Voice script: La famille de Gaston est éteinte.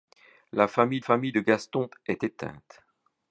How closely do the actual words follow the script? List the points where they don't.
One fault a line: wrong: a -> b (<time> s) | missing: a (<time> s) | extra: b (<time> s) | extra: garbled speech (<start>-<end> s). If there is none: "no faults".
extra: famille (1.0 s)